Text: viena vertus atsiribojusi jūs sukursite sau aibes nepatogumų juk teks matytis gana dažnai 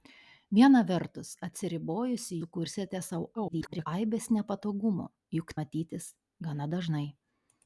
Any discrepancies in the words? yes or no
yes